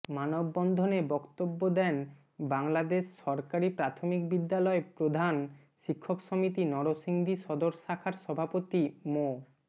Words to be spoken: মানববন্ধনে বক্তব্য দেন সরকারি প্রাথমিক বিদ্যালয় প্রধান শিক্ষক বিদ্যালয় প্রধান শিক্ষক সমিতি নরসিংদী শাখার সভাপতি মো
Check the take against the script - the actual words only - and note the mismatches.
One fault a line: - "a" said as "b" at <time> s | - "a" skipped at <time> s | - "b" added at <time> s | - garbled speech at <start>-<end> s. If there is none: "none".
- "বাংলাদেশ" added at 2.5 s
- "বিদ্যালয় প্রধান শিক্ষক" skipped at 6.2 s
- "সদর" added at 7.4 s